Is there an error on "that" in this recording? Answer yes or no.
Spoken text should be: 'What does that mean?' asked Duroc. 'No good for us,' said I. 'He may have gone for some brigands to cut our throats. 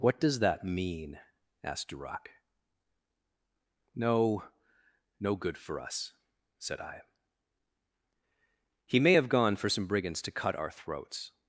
no